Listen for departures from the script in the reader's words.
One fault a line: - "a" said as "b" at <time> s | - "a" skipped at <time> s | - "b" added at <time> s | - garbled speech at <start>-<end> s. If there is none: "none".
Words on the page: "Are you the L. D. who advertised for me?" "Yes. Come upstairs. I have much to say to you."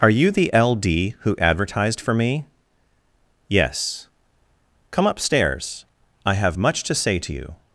none